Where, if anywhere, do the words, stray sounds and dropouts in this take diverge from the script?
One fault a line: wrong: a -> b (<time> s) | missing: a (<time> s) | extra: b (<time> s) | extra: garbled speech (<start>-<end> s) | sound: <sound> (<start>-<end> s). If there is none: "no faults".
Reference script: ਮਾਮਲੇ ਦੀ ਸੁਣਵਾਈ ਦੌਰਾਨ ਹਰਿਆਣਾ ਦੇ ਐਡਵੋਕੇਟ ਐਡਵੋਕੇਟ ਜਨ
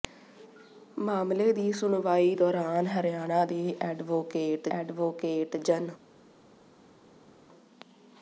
no faults